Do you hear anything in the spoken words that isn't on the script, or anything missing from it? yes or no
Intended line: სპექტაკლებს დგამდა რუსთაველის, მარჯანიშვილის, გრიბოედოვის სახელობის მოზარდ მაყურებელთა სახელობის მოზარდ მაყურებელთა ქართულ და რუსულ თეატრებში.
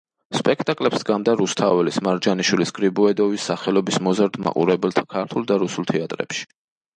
yes